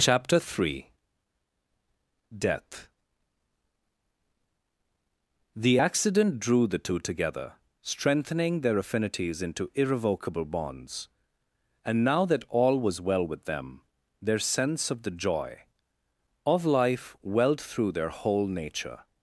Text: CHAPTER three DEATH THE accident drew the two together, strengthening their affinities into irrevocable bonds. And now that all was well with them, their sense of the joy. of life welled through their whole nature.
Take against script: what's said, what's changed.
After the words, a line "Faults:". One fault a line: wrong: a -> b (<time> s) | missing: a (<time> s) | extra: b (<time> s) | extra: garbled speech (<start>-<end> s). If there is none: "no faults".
CHAPTER three DEATH THE accident drew the two together, strengthening their affinities into irrevocable bonds. And now that all was well with them, their sense of the joy. of life welled through their whole nature.
Faults:
no faults